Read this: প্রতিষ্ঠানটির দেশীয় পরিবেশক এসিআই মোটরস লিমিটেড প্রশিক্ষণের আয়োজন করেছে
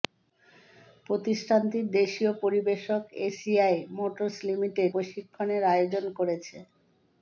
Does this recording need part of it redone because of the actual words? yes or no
no